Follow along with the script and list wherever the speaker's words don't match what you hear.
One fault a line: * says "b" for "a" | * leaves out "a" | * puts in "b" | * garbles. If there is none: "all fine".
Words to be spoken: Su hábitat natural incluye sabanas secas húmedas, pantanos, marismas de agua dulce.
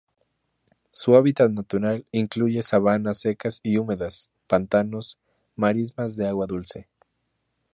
* puts in "y"